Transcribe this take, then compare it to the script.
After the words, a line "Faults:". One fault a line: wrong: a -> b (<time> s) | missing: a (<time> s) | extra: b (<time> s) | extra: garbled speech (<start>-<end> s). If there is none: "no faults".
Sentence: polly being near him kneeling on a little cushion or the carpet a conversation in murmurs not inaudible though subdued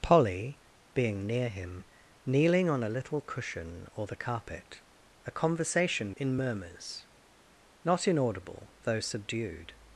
polly being near him kneeling on a little cushion or the carpet a conversation in murmurs not inaudible though subdued
Faults:
no faults